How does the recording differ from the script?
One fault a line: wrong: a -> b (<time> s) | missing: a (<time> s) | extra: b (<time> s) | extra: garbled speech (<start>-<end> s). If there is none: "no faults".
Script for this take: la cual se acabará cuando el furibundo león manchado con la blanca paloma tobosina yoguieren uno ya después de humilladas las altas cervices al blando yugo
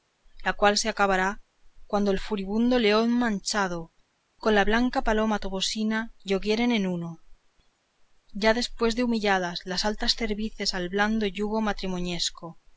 extra: en (6.7 s)